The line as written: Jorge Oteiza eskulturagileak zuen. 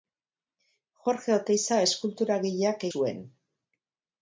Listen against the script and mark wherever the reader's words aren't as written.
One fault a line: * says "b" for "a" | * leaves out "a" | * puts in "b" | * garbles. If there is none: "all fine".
all fine